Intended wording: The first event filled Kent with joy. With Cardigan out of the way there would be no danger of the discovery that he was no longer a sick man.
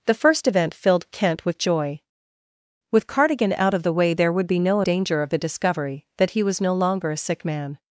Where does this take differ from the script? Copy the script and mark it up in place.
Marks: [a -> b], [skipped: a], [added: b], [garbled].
The first event filled Kent with joy. With Cardigan out of the way there would be no danger of the discovery that he was no longer a sick man.